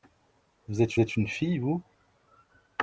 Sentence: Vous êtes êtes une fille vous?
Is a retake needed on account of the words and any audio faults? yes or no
no